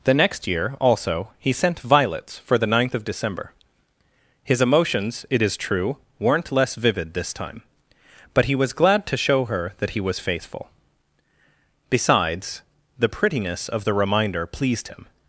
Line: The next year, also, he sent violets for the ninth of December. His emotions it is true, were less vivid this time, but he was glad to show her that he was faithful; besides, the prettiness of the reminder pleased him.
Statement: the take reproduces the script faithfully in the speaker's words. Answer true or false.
false